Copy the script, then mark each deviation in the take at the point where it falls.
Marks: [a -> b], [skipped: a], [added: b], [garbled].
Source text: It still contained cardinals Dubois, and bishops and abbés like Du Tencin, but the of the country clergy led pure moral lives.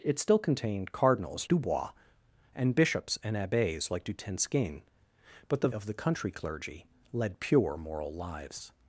It still contained cardinals Dubois, and bishops and abbés like Du Tencin, but the of the country clergy led pure moral lives.